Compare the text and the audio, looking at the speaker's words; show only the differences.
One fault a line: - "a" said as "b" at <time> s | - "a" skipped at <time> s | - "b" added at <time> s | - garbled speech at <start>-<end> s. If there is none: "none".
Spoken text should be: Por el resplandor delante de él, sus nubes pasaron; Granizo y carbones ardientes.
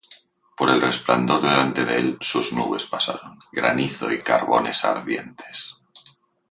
none